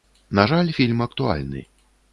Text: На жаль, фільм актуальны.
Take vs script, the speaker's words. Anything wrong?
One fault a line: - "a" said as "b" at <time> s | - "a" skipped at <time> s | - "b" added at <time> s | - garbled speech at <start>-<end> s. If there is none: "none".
none